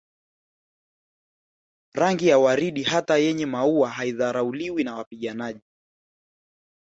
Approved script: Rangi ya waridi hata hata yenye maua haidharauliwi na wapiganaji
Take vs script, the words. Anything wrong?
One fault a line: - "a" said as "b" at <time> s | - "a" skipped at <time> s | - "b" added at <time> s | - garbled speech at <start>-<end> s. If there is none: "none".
- "hata" skipped at 3.2 s